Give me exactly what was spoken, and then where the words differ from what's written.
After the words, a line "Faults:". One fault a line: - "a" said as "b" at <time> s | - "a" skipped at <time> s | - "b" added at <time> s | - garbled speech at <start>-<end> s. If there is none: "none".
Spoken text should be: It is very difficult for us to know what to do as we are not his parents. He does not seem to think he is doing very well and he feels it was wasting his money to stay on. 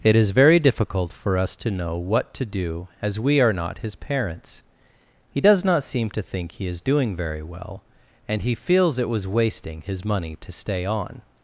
It is very difficult for us to know what to do as we are not his parents. He does not seem to think he is doing very well and he feels it was wasting his money to stay on.
Faults:
none